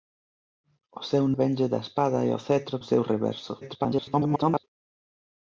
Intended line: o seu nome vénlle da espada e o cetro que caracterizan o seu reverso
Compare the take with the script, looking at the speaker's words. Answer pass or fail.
fail